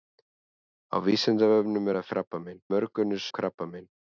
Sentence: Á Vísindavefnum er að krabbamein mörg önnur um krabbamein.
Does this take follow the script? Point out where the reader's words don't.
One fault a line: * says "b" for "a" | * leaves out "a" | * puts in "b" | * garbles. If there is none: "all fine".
all fine